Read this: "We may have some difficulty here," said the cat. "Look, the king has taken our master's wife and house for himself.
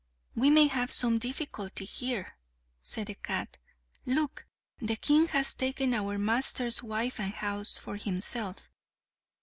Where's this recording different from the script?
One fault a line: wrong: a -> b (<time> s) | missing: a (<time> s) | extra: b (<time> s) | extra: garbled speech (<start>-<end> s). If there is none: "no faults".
no faults